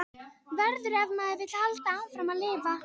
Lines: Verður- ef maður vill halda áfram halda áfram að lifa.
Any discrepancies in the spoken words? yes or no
yes